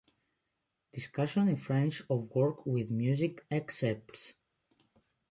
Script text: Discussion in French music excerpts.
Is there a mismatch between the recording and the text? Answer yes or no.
yes